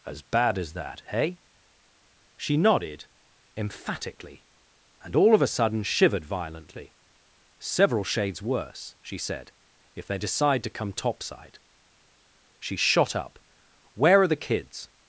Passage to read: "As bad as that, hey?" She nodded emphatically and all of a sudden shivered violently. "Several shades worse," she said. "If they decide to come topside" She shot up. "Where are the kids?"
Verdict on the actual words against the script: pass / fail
pass